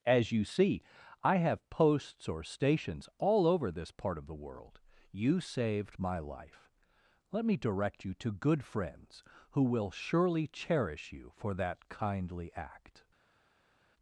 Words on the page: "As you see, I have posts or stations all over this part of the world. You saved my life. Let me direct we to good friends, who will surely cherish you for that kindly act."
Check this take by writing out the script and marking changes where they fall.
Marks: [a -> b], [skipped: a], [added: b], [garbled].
"As you see, I have posts or stations all over this part of the world. You saved my life. Let me direct [we -> you] to good friends, who will surely cherish you for that kindly act."